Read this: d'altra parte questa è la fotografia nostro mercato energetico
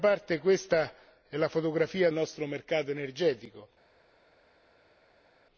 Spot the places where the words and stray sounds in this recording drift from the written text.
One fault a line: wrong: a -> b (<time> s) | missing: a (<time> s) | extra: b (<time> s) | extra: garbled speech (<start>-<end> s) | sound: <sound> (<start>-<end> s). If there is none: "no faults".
no faults